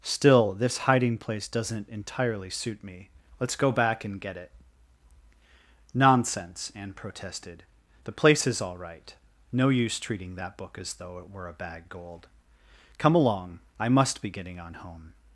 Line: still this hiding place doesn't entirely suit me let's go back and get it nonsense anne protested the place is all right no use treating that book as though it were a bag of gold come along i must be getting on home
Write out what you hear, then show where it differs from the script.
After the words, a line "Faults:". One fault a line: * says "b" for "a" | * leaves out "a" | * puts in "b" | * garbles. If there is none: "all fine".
still this hiding place doesn't entirely suit me let's go back and get it nonsense anne protested the place is all right no use treating that book as though it were a bag gold come along i must be getting on home
Faults:
* leaves out "of"